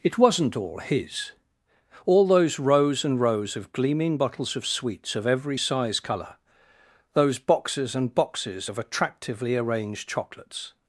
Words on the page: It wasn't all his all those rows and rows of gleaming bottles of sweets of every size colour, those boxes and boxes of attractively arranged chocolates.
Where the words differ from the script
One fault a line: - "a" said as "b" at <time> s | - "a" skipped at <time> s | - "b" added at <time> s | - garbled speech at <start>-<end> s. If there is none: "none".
none